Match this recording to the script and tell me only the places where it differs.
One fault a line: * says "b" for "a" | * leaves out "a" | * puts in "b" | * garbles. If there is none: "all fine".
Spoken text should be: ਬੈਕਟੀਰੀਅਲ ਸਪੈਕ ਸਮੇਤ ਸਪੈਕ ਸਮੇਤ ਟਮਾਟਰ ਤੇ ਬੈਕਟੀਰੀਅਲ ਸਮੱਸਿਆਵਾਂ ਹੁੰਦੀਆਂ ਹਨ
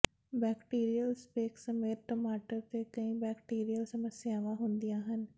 * leaves out "ਸਪੈਕ ਸਮੇਤ"
* puts in "ਕਈ"